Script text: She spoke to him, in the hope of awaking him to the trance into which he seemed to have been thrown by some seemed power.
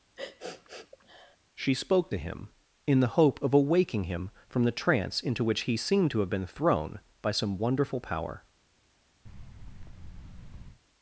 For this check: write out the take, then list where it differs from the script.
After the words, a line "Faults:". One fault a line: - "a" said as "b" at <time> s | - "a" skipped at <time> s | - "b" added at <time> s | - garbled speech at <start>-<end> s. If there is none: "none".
She spoke to him, in the hope of awaking him from the trance into which he seemed to have been thrown by some wonderful power.
Faults:
- "to" said as "from" at 4.5 s
- "seemed" said as "wonderful" at 7.6 s